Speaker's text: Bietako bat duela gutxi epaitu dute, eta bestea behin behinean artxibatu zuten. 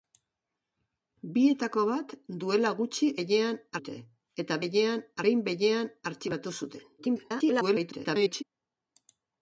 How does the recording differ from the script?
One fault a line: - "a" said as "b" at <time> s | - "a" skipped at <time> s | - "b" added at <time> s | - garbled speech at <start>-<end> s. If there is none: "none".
- "epaitu" said as "behinean" at 3.2 s
- "bestea" said as "behinean" at 4.7 s
- garbled speech at 7.0-8.4 s